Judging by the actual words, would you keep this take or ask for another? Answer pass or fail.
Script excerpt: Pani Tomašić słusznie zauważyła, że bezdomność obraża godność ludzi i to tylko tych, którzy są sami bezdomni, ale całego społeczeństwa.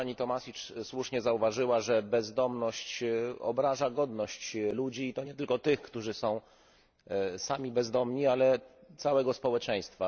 fail